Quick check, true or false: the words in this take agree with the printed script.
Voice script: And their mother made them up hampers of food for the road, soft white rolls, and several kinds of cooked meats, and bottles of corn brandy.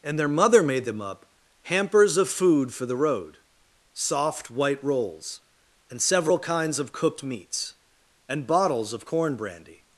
true